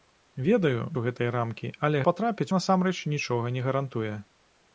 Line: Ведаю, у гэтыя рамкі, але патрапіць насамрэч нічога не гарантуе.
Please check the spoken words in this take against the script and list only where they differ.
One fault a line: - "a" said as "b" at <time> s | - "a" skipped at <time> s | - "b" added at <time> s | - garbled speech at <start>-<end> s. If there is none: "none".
none